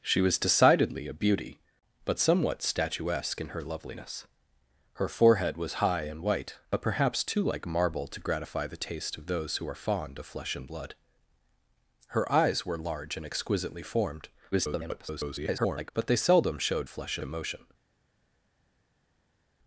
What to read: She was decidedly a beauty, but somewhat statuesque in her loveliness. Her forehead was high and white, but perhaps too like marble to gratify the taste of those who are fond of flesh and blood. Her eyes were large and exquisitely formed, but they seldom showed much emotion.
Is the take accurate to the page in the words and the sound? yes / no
no